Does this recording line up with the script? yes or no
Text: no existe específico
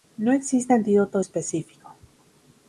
no